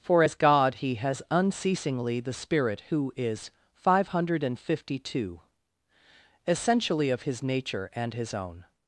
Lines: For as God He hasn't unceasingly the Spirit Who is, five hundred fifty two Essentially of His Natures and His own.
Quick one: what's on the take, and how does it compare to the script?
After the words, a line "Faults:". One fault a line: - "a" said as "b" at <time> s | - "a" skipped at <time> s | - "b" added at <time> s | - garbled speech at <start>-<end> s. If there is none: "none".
For as God He has unceasingly the Spirit Who is, five hundred fifty two Essentially of His Nature and His own.
Faults:
- "hasn't" said as "has" at 0.9 s
- "Natures" said as "Nature" at 7.4 s